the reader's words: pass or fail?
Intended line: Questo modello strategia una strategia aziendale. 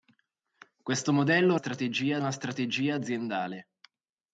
pass